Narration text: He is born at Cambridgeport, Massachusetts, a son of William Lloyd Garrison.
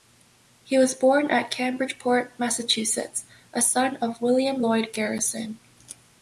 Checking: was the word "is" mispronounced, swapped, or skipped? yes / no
yes